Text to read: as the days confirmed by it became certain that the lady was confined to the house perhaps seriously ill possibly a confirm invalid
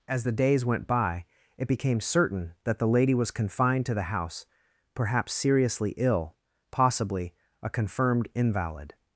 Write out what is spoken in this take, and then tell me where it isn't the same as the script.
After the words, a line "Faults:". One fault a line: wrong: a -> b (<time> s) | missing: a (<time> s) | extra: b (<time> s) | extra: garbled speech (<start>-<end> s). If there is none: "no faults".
as the days went by it became certain that the lady was confined to the house perhaps seriously ill possibly a confirmed invalid
Faults:
wrong: confirmed -> went (0.6 s)
wrong: confirm -> confirmed (7.7 s)